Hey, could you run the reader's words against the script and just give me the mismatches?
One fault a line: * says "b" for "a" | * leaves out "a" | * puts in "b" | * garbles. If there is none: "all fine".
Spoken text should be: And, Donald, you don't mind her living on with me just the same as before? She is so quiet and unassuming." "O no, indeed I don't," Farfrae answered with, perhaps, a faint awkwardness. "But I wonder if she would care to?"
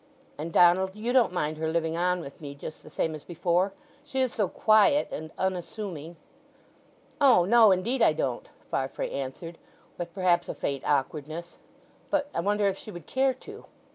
all fine